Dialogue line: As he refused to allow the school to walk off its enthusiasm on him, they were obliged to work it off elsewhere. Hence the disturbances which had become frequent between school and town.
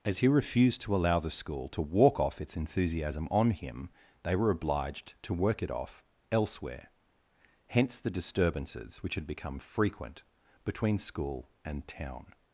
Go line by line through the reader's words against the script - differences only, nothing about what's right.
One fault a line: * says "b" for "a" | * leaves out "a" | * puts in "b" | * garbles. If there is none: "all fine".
all fine